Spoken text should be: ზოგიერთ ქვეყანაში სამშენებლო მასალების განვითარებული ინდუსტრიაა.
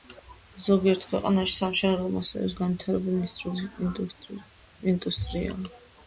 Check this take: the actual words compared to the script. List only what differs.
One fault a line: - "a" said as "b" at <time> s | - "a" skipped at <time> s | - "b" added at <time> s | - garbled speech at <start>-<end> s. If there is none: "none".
none